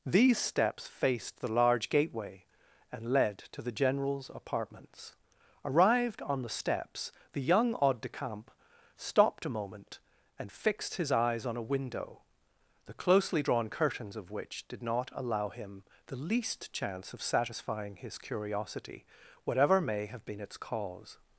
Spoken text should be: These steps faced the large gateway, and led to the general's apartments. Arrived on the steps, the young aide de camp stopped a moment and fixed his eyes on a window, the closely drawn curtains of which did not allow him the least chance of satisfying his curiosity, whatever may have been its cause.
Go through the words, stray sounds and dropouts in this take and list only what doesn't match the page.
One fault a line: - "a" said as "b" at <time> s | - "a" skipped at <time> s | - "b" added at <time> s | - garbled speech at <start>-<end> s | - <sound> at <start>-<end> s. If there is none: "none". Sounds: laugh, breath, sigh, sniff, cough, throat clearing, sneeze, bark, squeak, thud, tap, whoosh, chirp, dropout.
none